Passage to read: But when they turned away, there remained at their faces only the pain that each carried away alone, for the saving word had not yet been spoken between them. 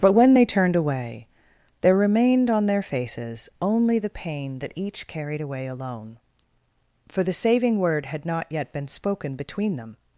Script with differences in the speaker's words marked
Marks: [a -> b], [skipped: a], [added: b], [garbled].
But when they turned away, there remained [at -> on] their faces only the pain that each carried away alone, for the saving word had not yet been spoken between them.